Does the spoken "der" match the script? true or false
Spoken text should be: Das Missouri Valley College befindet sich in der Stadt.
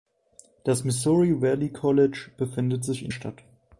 false